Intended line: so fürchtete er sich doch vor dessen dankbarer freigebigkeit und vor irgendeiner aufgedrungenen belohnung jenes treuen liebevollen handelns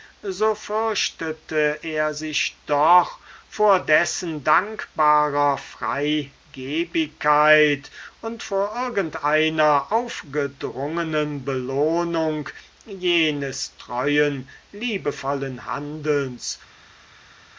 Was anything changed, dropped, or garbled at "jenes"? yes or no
no